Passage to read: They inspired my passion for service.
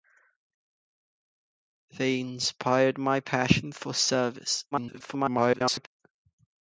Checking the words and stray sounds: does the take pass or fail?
fail